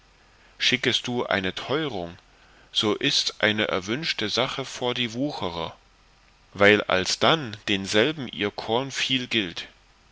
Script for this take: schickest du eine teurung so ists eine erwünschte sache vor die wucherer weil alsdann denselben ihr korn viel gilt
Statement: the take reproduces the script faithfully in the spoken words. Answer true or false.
true